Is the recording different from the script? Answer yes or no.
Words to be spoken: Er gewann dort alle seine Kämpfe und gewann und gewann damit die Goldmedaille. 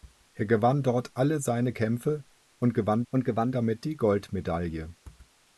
no